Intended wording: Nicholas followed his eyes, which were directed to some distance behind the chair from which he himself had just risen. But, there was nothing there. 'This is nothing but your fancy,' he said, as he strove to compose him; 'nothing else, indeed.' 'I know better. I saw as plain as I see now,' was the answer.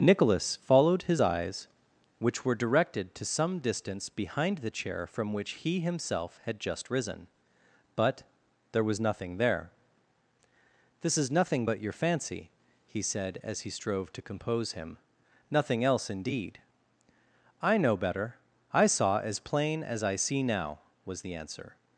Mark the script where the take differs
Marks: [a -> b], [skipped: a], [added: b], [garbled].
Nicholas followed his eyes, which were directed to some distance behind the chair from which he himself had just risen. But, there was nothing there. 'This is nothing but your fancy,' he said, as he strove to compose him; 'nothing else, indeed.' 'I know better. I saw as plain as I see now,' was the answer.